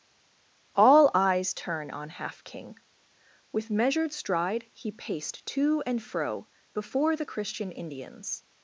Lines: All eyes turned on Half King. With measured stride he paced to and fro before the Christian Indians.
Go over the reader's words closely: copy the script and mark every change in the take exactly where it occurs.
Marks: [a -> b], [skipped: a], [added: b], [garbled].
All eyes [turned -> turn] on Half King. With measured stride he paced to and fro before the Christian Indians.